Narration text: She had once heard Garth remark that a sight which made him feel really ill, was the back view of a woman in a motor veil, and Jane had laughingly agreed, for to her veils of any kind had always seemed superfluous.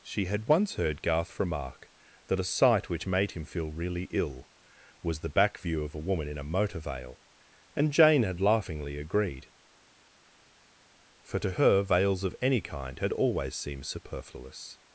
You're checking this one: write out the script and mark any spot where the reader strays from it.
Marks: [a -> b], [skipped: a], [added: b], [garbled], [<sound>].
She had once heard Garth remark that a sight which made him feel really ill, was the back view of a woman in a motor veil, and Jane had laughingly agreed, for to her veils of any kind had always seemed superfluous.